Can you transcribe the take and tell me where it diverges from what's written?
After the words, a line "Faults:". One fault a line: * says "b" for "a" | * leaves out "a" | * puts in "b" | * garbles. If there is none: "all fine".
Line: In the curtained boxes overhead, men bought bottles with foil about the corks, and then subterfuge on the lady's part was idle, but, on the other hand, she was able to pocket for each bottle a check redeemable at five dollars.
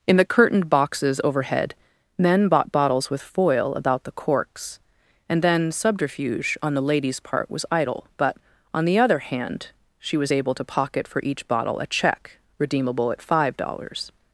In the curtained boxes overhead, men bought bottles with foil about the corks, and then subterfuge on the lady's part was idle, but, on the other hand, she was able to pocket for each bottle a check redeemable at five dollars.
Faults:
all fine